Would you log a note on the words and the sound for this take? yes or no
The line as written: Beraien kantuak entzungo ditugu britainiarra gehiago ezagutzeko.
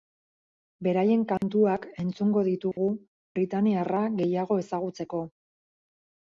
yes